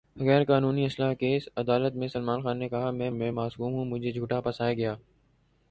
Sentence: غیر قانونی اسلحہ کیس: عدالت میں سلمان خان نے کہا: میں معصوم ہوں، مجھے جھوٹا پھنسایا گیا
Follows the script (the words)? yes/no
no